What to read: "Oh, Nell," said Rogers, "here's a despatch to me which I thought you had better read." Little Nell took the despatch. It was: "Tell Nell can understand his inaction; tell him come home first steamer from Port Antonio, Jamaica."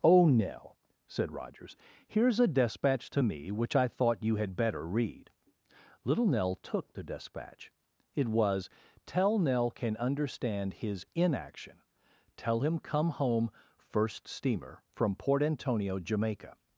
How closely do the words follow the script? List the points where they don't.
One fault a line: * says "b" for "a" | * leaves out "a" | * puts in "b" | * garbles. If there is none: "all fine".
all fine